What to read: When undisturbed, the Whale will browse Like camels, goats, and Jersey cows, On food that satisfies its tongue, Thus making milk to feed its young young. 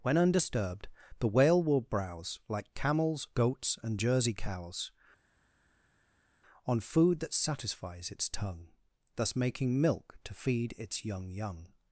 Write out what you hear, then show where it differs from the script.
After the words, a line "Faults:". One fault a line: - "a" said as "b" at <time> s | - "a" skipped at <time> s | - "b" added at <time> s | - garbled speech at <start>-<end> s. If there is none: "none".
When undisturbed, the Whale will browse Like camels, goats, and Jersey cows, On food that satisfies its tongue, Thus making milk to feed its young young.
Faults:
none